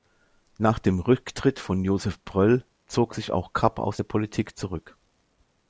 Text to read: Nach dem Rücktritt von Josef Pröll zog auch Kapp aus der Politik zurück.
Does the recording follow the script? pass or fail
fail